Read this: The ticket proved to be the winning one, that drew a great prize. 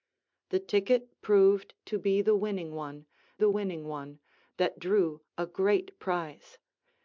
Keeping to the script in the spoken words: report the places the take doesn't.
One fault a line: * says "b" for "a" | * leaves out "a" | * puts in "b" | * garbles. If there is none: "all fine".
* puts in "the winning one"